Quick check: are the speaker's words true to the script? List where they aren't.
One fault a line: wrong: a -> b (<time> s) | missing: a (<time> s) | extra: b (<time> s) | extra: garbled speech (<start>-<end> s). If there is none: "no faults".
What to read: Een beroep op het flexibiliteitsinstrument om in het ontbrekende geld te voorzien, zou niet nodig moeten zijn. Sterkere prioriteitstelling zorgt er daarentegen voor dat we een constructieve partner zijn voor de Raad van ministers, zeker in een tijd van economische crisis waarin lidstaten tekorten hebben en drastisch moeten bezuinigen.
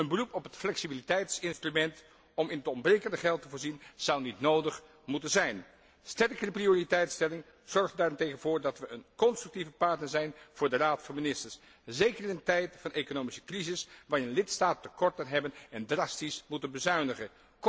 no faults